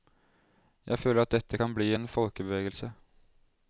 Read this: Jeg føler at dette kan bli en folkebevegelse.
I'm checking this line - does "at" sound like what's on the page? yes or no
yes